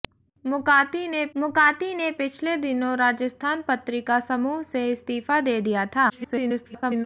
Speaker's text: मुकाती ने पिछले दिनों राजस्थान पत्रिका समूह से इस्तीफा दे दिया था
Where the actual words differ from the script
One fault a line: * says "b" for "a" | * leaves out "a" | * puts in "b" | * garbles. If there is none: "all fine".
* puts in "मुकाती ने"
* garbles